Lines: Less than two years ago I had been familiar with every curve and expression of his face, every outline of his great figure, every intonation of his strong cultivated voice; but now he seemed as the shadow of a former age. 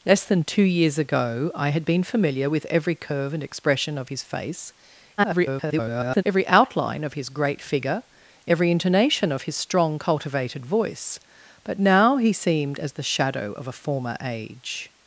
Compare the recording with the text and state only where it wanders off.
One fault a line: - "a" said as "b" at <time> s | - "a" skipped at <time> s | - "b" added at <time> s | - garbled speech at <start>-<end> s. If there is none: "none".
- garbled speech at 5.2-6.2 s